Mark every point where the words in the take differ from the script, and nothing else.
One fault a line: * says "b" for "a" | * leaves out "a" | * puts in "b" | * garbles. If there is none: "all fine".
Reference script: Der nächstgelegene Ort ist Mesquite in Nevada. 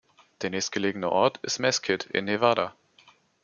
all fine